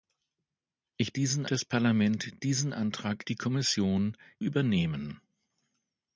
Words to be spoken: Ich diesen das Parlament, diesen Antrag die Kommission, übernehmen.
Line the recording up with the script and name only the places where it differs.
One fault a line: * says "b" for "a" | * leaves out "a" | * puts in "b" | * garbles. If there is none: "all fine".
all fine